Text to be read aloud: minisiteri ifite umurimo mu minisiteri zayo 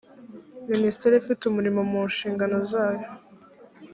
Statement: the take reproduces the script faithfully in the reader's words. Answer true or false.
false